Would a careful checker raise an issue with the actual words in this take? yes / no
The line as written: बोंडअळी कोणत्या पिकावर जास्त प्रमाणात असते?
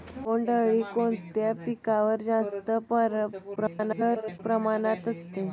yes